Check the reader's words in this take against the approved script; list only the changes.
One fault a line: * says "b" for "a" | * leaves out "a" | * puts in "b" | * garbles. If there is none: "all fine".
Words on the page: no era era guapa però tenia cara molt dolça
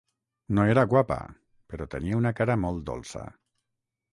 * leaves out "era"
* puts in "una"